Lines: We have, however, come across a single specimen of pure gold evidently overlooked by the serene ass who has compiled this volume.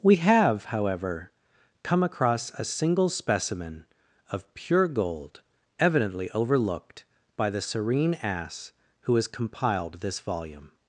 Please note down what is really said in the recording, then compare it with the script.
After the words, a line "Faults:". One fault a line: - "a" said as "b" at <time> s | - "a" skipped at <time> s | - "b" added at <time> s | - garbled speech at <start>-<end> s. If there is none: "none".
We have, however, come across a single specimen of pure gold evidently overlooked by the serene ass who has compiled this volume.
Faults:
none